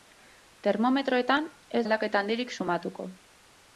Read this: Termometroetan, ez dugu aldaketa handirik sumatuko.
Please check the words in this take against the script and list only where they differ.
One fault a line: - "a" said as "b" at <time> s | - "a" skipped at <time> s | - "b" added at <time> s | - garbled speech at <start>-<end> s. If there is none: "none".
- "dugu" skipped at 1.8 s